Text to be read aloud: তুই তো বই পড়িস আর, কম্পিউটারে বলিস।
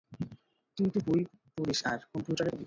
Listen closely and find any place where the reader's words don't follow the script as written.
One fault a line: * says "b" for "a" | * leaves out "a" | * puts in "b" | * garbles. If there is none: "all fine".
all fine